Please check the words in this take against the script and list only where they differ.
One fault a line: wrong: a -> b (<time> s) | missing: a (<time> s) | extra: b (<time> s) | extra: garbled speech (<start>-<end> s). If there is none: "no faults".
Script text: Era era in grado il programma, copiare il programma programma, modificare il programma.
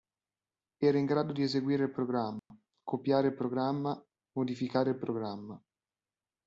missing: era (1.0 s)
extra: di eseguire (1.3 s)
missing: programma (4.0 s)